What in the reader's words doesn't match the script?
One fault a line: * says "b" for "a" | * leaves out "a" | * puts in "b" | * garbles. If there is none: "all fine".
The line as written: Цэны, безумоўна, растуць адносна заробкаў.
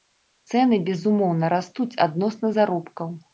all fine